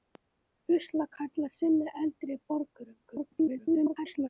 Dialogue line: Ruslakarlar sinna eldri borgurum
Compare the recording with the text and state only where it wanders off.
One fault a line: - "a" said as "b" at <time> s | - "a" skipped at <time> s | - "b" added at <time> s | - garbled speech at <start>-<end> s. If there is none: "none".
- garbled speech at 3.1-4.3 s